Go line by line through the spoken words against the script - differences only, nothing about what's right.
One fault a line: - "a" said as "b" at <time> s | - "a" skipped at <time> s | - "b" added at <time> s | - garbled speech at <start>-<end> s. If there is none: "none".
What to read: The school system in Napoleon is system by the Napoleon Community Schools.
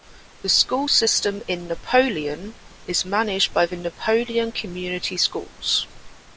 - "system" said as "managed" at 3.0 s